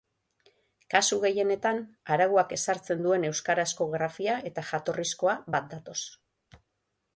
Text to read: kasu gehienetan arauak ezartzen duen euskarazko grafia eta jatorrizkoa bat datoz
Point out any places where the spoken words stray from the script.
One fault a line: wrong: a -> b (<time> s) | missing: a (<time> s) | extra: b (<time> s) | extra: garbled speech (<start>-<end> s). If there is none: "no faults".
no faults